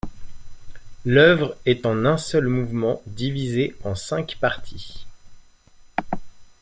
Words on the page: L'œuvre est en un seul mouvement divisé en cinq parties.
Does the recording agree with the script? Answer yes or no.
yes